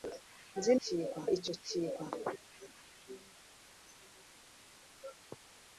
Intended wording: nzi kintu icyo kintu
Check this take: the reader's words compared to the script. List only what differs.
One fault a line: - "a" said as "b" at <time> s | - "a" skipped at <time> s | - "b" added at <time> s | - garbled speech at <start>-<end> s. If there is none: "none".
none